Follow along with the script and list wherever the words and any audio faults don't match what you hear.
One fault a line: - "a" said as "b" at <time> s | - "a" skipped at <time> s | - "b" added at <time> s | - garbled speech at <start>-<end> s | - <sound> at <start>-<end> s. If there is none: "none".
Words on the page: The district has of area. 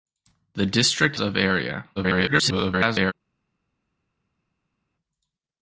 - "has" skipped at 1.2 s
- garbled speech at 2.0-3.1 s